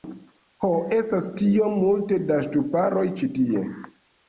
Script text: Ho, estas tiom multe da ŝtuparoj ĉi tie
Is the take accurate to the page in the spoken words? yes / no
yes